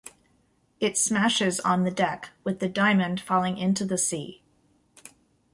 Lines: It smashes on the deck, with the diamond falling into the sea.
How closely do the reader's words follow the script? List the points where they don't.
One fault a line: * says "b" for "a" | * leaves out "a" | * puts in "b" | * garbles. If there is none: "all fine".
all fine